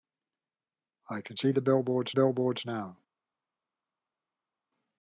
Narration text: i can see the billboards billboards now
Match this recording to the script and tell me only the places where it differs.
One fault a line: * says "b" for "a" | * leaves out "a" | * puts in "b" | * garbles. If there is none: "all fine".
all fine